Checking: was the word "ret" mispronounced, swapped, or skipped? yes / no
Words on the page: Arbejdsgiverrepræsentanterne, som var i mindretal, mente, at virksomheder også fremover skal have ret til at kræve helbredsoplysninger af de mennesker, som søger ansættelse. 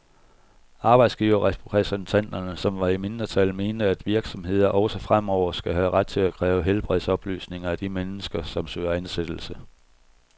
no